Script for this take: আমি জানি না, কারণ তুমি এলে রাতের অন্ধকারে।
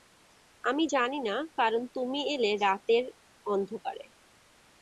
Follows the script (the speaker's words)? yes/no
yes